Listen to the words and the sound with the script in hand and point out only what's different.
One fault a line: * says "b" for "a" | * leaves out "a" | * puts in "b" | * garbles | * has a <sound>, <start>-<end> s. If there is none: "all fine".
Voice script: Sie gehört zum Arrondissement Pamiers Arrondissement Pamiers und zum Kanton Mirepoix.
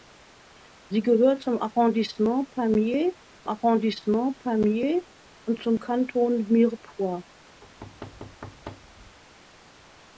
* has a thud, 7.6-9.2 s